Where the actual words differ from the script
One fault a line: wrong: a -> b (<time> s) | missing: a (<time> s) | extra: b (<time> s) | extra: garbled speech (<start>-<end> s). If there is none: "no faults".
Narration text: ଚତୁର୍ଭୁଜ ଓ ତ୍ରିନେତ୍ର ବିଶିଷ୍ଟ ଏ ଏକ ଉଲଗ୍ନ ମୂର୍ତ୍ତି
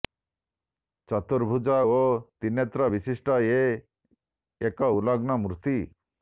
no faults